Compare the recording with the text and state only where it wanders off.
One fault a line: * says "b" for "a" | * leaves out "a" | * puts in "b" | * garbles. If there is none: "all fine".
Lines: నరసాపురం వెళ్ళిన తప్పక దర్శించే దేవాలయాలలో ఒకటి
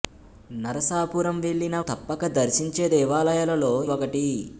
all fine